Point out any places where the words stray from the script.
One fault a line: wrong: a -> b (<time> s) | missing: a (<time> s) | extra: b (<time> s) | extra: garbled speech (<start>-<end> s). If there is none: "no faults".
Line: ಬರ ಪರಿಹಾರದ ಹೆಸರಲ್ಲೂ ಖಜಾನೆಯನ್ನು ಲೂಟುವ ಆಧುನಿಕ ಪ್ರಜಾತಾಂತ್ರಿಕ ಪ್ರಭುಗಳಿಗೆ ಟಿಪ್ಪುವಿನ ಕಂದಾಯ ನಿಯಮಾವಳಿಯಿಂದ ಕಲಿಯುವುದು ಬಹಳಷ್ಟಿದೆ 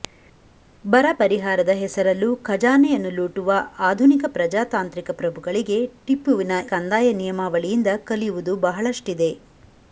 no faults